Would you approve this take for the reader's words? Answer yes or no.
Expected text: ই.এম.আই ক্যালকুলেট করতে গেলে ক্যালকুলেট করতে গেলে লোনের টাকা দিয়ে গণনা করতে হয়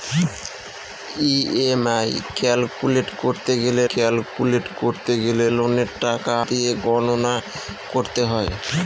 yes